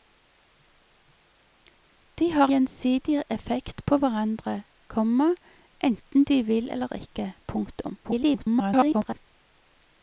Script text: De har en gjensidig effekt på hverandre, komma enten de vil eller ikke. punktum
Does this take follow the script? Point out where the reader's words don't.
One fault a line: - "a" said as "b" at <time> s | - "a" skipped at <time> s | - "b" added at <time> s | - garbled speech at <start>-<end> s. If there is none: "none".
- "en" skipped at 2.5 s
- garbled speech at 8.0-9.3 s